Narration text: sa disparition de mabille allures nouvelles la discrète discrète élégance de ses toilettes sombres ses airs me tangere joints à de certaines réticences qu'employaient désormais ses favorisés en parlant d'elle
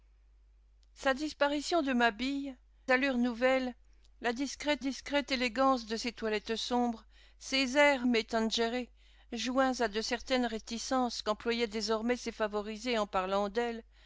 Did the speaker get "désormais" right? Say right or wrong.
right